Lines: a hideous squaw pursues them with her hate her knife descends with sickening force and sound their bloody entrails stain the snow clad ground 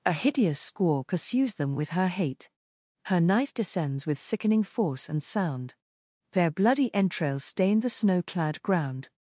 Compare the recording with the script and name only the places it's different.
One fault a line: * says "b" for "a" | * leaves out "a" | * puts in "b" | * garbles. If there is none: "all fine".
all fine